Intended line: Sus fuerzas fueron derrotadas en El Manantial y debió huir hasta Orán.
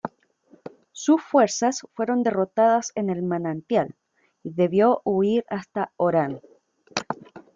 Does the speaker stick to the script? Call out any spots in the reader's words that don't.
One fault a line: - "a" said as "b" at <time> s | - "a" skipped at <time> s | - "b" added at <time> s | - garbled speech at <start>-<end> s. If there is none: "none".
none